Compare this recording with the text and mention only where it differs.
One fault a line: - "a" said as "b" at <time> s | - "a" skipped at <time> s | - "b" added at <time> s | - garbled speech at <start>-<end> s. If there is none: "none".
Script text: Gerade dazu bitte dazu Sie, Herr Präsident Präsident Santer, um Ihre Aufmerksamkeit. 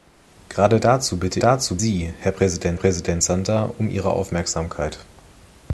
none